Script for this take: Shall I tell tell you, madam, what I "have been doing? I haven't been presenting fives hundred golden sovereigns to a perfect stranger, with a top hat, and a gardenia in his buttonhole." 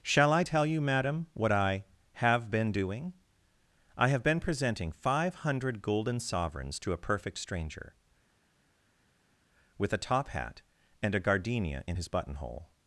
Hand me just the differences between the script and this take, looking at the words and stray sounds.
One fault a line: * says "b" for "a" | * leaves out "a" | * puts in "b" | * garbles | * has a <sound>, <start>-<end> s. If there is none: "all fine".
* leaves out "tell"
* says "have" for "haven't"
* says "five" for "fives"